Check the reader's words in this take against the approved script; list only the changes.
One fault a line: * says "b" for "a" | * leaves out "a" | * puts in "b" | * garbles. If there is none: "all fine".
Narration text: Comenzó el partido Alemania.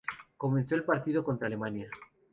* puts in "contra"